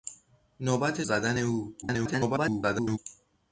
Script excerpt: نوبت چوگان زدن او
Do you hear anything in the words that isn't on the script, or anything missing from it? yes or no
yes